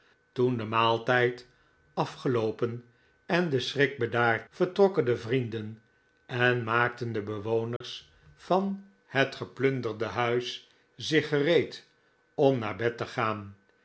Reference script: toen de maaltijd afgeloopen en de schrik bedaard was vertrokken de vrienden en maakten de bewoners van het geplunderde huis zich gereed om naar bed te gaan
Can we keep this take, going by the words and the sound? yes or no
no